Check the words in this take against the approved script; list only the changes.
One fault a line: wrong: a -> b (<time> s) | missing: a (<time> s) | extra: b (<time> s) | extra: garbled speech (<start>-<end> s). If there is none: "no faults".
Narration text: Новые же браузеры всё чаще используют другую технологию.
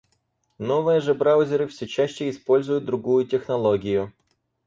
no faults